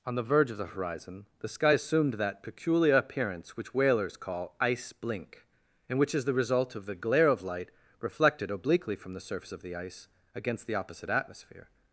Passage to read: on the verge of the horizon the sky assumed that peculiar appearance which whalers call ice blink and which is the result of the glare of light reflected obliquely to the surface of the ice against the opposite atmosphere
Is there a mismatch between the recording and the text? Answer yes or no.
yes